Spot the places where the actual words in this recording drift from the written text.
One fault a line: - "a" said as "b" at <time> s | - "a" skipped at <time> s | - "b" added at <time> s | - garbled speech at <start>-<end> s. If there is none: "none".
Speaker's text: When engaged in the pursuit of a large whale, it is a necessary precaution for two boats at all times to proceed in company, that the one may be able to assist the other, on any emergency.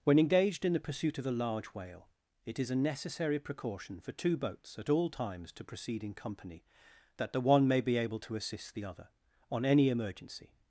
none